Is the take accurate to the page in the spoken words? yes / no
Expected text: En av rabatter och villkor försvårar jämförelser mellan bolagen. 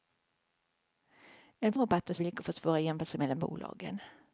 yes